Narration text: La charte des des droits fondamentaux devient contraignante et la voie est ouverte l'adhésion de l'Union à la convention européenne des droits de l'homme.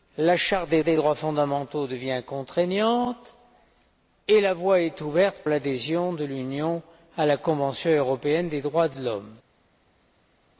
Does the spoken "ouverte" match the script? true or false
true